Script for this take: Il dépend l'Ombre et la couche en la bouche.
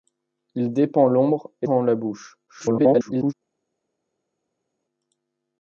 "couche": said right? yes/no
no